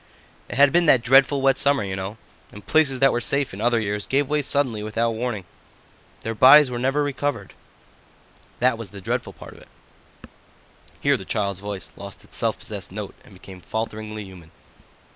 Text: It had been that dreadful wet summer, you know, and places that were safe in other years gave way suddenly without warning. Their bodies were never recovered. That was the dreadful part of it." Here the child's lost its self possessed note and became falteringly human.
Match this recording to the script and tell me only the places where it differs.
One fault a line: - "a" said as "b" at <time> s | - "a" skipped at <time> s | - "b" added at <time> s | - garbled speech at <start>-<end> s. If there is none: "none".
- "voice" added at 11.6 s